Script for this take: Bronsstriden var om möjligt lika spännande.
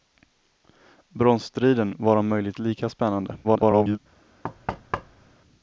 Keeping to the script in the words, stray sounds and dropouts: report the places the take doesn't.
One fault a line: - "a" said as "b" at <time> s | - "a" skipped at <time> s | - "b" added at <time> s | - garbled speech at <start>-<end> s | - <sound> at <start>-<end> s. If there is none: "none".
- garbled speech at 3.4-4.0 s
- thud at 4.4-5.4 s